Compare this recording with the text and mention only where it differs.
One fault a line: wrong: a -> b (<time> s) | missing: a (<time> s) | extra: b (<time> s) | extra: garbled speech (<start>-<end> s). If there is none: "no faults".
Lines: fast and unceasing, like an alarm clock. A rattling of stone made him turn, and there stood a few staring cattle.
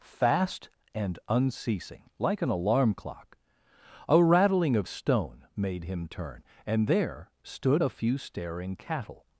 no faults